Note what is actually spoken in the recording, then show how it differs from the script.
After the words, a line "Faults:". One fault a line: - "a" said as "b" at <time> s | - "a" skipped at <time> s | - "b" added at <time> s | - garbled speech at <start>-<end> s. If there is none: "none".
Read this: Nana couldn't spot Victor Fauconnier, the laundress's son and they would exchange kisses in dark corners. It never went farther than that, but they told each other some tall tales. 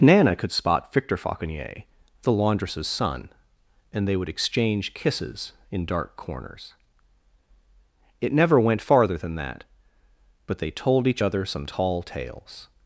Nana could spot Victor Fauconnier, the laundress's son and they would exchange kisses in dark corners. It never went farther than that, but they told each other some tall tales.
Faults:
- "couldn't" said as "could" at 0.3 s